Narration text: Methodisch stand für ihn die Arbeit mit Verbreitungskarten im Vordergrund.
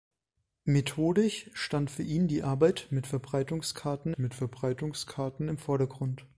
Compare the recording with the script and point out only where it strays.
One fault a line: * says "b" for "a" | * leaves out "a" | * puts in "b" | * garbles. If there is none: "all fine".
* puts in "mit Verbreitungskarten"